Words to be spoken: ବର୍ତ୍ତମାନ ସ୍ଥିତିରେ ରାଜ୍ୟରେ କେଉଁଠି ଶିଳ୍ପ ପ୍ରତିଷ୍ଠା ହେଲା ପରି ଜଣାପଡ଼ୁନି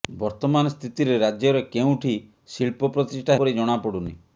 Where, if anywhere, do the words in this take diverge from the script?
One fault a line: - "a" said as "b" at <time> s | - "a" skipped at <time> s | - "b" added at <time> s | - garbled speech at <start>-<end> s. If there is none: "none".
- "ହେଲା" skipped at 3.4 s